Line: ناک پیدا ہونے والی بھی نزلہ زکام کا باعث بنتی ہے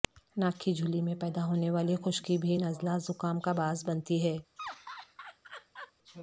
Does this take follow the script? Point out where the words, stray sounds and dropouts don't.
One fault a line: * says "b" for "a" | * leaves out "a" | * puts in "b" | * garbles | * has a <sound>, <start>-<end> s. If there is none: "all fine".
* puts in "کی جھلی میں"
* puts in "خشکی"
* has a laugh, 4.6-5.9 s